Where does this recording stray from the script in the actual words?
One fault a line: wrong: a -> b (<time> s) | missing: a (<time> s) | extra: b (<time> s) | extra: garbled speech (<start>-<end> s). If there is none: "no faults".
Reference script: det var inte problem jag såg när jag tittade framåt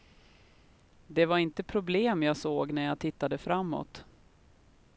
no faults